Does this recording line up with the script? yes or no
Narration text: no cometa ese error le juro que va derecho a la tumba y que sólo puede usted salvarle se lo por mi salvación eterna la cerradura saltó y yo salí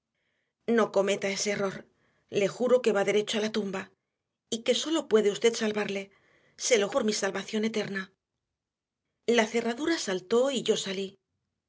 yes